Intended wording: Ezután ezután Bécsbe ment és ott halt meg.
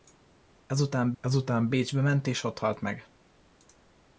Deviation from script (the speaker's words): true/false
false